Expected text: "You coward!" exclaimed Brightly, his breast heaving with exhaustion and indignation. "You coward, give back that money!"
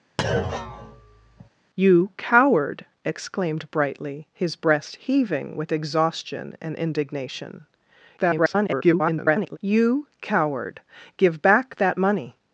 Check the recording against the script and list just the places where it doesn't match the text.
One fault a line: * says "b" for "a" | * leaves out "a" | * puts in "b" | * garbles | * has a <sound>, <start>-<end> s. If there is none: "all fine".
* has a thud, 0.2-1.5 s
* garbles